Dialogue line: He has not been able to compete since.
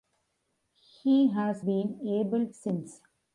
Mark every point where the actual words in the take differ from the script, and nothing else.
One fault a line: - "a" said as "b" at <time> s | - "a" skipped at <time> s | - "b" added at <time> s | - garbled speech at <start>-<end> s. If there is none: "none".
- "not" skipped at 1.6 s
- "to compete" skipped at 2.5 s